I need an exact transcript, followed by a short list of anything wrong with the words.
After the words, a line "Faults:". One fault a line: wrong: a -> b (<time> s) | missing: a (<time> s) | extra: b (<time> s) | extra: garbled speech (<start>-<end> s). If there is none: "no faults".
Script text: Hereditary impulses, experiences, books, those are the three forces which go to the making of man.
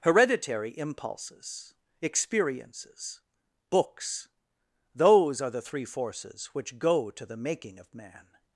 Hereditary impulses, experiences, books, those are the three forces which go to the making of man.
Faults:
no faults